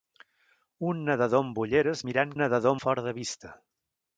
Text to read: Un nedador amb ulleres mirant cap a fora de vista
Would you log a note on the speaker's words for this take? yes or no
yes